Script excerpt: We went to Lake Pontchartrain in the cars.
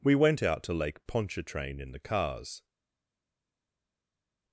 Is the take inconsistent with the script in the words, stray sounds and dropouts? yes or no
yes